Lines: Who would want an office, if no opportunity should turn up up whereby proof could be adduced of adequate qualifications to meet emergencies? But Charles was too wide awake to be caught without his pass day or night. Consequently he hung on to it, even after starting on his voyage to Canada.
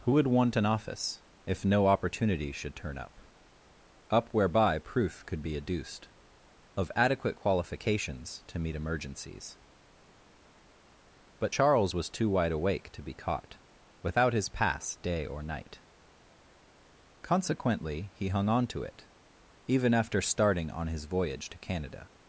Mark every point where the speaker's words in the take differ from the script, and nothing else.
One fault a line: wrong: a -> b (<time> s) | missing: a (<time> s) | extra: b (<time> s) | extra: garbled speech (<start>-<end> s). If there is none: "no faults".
no faults